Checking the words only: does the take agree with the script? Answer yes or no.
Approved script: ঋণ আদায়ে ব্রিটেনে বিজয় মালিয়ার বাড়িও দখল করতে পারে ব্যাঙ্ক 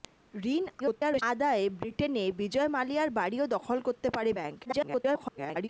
no